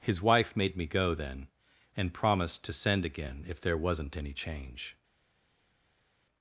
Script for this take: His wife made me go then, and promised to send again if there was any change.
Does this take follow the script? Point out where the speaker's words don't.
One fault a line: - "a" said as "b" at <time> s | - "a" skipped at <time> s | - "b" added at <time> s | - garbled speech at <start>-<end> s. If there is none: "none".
- "was" said as "wasn't" at 3.8 s